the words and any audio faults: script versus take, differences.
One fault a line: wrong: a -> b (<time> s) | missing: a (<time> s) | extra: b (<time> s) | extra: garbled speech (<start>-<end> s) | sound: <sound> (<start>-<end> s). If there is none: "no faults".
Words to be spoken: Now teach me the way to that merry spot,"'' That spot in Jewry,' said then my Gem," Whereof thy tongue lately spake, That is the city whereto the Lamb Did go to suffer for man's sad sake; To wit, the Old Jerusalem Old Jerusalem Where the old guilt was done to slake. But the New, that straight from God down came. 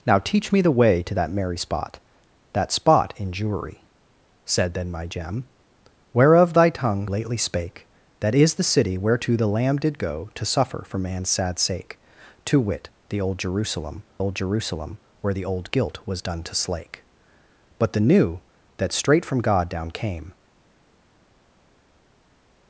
no faults